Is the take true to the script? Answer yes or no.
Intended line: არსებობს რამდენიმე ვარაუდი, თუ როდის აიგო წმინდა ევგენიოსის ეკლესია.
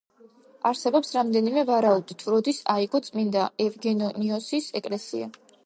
yes